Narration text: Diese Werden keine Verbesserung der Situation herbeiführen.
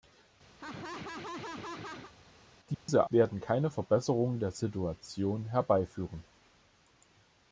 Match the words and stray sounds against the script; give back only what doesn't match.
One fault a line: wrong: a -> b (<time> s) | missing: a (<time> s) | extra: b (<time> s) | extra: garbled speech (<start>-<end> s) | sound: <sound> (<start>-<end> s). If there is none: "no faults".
sound: laugh (0.6-2.1 s)
sound: dropout (2.7-2.9 s)